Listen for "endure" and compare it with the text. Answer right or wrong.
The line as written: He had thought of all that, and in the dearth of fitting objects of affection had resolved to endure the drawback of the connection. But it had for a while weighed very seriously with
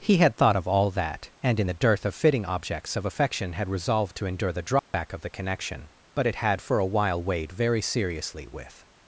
right